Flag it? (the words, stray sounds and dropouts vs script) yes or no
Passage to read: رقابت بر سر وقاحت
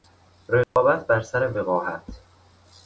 yes